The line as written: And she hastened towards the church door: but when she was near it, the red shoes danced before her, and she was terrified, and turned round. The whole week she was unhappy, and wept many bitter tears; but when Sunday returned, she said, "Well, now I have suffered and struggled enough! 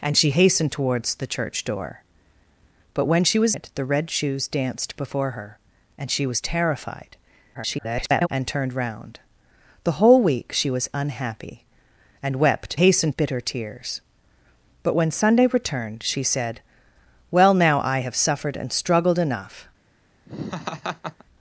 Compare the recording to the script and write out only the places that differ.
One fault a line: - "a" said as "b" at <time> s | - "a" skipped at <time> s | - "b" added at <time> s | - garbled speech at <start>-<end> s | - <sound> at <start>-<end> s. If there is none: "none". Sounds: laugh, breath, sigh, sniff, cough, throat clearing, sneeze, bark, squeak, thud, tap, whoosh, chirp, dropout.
- "near" skipped at 3.5 s
- garbled speech at 7.5-8.3 s
- "many" said as "hastened" at 12.7 s
- laugh at 20.3-21.2 s